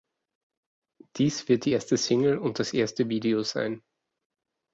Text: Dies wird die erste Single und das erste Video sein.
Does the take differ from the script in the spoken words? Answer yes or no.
no